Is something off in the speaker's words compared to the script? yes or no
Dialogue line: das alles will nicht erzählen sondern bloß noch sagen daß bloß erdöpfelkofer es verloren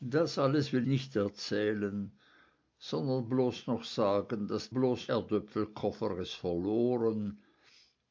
no